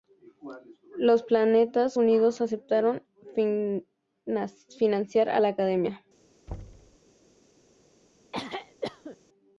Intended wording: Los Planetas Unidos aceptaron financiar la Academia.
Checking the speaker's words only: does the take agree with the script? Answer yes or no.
no